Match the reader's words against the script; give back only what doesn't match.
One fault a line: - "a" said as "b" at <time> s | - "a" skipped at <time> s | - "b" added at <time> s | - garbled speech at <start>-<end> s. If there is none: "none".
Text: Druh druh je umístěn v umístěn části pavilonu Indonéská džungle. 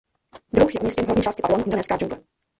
- "druh" skipped at 0.7 s
- "umístěn" said as "horní" at 1.1 s